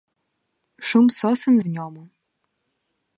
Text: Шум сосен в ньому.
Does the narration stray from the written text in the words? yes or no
no